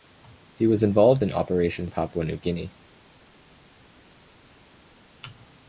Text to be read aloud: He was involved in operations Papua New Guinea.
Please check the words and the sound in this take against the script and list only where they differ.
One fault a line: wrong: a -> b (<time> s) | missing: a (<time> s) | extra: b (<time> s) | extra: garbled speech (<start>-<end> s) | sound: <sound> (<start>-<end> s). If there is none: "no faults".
no faults